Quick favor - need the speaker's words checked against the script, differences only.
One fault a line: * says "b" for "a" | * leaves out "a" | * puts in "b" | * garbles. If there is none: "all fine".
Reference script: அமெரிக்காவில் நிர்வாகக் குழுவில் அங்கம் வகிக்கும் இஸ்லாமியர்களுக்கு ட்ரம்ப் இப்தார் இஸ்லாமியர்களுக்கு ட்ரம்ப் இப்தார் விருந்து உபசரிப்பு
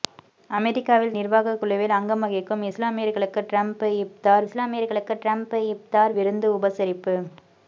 all fine